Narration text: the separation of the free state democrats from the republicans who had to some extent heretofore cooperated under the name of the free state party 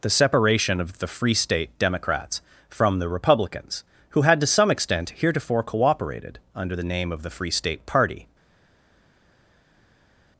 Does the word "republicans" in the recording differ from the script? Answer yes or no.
no